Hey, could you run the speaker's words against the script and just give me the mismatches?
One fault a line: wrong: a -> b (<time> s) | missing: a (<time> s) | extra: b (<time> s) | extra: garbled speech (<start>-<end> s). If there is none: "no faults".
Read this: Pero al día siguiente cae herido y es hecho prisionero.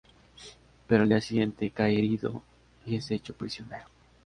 no faults